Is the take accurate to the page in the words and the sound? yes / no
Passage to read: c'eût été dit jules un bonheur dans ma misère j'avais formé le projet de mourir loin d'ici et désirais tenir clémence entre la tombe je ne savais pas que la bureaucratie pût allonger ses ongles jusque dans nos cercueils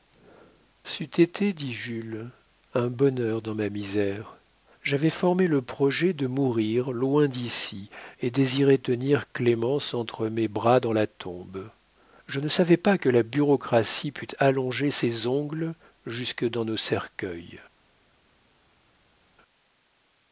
no